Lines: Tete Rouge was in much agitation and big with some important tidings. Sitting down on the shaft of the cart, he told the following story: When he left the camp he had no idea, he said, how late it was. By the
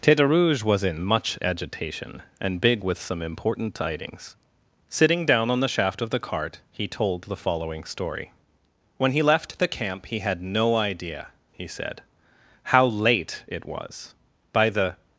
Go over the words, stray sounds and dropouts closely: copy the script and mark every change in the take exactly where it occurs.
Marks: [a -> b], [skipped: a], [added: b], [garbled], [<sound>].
Tete Rouge was in much agitation and big with some important tidings. Sitting down on the shaft of the cart, he told the following story: When he left the camp he had no idea, he said, how late it was. By the